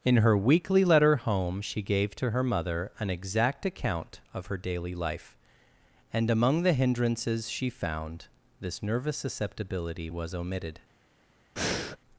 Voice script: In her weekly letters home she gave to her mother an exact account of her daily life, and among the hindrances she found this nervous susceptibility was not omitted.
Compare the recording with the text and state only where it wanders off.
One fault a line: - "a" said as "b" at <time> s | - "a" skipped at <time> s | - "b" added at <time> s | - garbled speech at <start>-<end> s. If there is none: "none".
- "letters" said as "letter" at 0.8 s
- "not" skipped at 10.3 s